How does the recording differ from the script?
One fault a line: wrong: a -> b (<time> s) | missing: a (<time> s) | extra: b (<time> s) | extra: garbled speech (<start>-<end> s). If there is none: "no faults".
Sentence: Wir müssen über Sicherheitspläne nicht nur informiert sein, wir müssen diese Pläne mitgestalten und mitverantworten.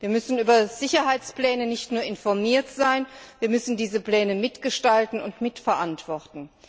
no faults